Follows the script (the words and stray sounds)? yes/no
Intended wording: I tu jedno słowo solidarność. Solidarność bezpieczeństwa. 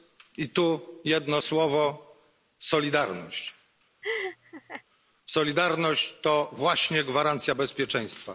no